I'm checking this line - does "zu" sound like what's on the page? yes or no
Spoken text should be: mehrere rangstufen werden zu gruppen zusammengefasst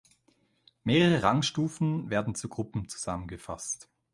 yes